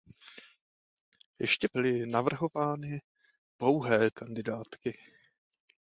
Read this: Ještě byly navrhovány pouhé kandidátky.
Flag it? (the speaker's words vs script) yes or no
no